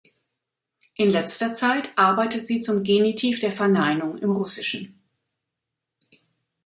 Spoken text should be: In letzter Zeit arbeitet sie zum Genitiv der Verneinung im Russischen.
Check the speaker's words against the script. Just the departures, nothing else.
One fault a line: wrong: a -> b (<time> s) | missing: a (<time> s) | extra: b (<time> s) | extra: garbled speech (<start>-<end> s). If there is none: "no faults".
no faults